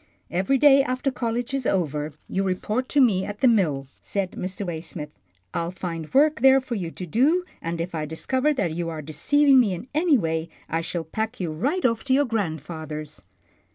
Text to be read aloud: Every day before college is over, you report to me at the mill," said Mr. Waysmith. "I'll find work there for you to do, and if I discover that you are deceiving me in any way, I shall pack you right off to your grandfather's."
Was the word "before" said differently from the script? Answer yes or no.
yes